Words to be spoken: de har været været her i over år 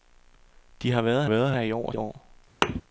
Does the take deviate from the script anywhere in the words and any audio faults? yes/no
yes